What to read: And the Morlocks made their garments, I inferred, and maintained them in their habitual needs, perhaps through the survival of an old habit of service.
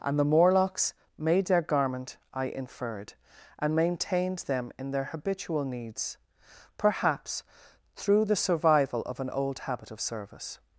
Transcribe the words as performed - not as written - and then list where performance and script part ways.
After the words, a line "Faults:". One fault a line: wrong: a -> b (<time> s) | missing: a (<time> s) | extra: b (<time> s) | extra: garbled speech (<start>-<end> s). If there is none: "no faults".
And the Morlocks made their garment, I inferred, and maintained them in their habitual needs, perhaps through the survival of an old habit of service.
Faults:
wrong: garments -> garment (1.6 s)